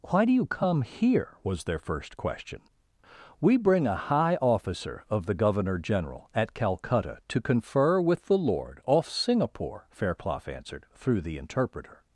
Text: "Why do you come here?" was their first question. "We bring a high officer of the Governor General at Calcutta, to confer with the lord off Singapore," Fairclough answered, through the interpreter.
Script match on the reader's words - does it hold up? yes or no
yes